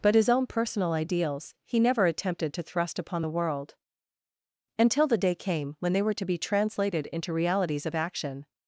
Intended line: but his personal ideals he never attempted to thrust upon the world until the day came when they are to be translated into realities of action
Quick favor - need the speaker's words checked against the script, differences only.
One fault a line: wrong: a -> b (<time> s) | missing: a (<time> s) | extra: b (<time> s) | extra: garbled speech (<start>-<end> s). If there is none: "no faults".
extra: own (0.3 s)
wrong: are -> were (6.0 s)